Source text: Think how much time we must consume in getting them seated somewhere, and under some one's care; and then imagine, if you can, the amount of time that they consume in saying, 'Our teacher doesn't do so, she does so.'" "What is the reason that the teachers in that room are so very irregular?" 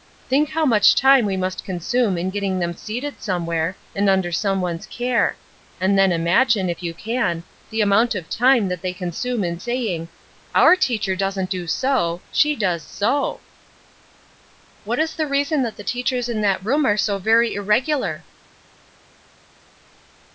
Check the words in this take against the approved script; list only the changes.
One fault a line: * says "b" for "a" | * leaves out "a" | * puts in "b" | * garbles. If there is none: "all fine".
all fine